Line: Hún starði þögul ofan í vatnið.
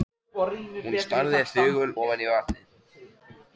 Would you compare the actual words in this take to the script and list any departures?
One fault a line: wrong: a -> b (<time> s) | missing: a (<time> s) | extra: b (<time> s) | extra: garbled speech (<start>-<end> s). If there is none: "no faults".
no faults